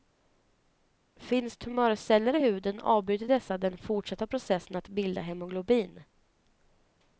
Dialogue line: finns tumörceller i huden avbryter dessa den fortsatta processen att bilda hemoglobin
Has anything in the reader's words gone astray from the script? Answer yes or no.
no